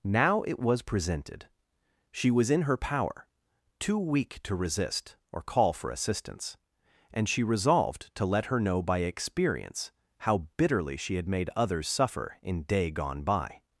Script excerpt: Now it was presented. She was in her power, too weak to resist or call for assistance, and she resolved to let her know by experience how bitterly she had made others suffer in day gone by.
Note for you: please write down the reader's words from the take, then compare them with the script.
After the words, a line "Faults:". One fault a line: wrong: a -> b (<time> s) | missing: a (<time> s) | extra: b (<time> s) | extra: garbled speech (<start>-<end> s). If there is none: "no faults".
Now it was presented. She was in her power, too weak to resist or call for assistance, and she resolved to let her know by experience how bitterly she had made others suffer in day gone by.
Faults:
no faults